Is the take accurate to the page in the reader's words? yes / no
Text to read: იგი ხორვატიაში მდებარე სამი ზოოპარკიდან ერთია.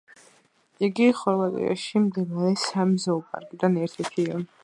no